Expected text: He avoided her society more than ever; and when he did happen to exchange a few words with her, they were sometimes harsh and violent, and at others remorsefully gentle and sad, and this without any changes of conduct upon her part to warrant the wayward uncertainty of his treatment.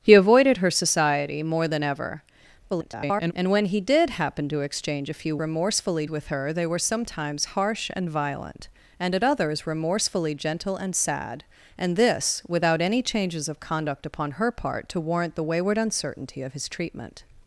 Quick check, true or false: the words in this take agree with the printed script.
false